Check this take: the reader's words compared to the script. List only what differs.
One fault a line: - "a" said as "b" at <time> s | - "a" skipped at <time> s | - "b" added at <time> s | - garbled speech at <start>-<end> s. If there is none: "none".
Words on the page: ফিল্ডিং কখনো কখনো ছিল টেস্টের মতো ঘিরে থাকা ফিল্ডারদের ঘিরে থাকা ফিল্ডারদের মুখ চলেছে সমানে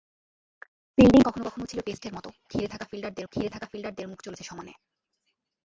none